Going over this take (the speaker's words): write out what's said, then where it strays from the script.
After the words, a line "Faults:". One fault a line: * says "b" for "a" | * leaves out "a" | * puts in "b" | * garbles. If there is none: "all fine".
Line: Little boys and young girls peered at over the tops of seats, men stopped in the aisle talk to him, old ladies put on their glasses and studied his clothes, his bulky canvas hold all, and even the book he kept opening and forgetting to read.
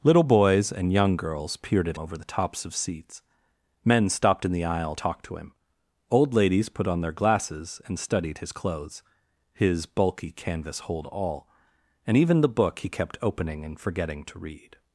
Little boys and young girls peered at over the tops of seats, men stopped in the aisle talk to him, old ladies put on their glasses and studied his clothes, his bulky canvas hold all, and even the book he kept opening and forgetting to read.
Faults:
all fine